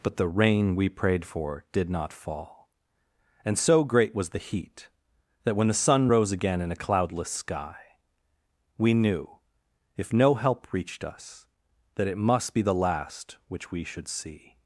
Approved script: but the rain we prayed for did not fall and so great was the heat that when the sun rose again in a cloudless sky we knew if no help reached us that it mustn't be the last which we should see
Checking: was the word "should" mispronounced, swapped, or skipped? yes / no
no